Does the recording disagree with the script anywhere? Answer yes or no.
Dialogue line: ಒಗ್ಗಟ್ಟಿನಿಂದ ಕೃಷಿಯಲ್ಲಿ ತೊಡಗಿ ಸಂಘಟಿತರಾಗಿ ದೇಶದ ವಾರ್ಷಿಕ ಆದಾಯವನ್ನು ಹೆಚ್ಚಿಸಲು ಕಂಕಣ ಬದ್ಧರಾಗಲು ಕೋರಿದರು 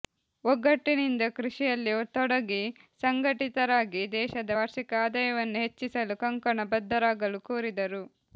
no